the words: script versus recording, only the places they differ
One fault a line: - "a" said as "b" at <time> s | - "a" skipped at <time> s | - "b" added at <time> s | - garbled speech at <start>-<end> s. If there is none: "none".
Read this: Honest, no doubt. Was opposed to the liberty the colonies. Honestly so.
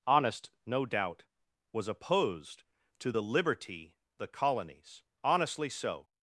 none